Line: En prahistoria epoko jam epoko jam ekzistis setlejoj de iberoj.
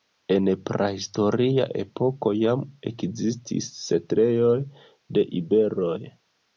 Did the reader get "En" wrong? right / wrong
right